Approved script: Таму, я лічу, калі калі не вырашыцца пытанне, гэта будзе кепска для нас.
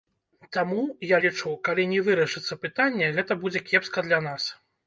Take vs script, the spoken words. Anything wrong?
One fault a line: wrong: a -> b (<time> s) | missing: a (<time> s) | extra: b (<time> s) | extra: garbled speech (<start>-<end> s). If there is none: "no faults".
missing: калі (1.9 s)